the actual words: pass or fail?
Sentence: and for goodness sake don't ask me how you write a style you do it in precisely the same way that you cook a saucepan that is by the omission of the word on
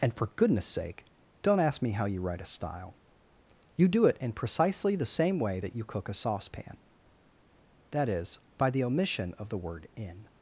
fail